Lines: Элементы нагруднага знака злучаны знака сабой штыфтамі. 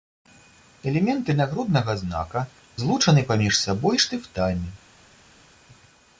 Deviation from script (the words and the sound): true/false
true